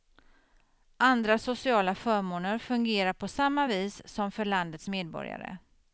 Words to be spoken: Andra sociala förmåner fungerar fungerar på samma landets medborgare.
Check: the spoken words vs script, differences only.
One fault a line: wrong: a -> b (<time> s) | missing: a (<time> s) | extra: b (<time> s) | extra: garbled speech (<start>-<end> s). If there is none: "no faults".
missing: fungerar (3.1 s)
extra: vis som för (3.7 s)